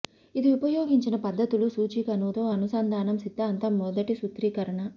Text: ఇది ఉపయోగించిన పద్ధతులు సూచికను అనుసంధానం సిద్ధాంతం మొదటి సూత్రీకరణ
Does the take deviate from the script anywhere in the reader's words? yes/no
yes